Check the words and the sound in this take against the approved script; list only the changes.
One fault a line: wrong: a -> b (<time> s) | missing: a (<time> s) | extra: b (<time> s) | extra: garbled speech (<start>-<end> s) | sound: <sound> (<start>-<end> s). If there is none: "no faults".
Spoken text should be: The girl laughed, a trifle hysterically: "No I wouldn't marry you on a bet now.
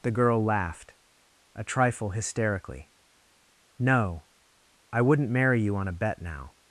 no faults